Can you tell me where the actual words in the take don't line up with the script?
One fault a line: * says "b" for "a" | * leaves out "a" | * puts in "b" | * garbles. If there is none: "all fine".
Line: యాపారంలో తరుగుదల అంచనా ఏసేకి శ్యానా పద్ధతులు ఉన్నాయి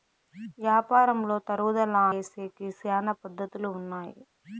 * leaves out "అంచనా"